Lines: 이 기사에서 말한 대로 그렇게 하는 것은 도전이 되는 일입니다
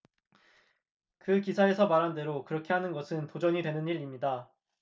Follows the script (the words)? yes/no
no